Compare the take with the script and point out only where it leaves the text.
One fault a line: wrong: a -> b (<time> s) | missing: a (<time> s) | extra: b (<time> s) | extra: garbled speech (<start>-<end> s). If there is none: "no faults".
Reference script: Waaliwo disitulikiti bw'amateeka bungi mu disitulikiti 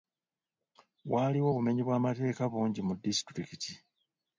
wrong: disitulikiti -> obumenyi (1.5 s)